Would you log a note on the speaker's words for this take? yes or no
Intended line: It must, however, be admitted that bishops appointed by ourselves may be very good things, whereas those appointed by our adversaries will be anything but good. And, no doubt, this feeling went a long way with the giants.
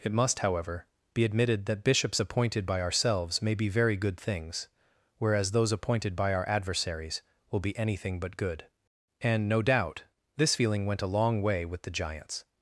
no